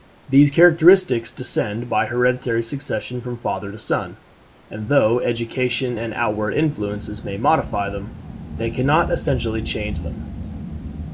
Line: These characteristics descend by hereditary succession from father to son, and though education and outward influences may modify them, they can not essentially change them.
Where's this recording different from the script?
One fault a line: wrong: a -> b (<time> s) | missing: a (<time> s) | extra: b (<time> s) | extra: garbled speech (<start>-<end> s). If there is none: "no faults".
no faults